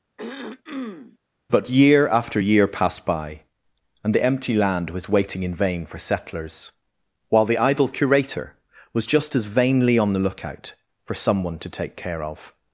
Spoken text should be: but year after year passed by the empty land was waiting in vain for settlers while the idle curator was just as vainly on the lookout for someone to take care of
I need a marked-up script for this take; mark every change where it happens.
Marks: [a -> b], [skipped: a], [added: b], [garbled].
but year after year passed by [added: and] the empty land was waiting in vain for settlers while the idle curator was just as vainly on the lookout for someone to take care of